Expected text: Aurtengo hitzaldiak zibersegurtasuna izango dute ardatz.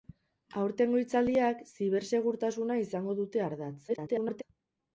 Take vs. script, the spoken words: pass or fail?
fail